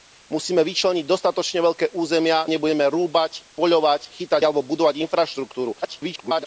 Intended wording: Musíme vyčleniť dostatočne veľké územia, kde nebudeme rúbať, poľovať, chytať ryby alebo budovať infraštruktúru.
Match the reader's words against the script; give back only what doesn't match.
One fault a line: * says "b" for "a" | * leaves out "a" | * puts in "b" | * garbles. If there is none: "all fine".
* leaves out "kde"
* leaves out "ryby"
* garbles